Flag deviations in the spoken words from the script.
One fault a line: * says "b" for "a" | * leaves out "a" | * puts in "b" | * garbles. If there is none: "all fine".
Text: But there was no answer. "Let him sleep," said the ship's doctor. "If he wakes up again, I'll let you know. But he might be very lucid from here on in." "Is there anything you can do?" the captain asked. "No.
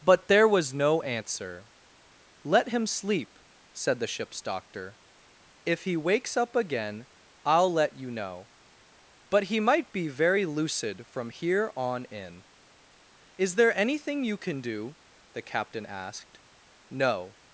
all fine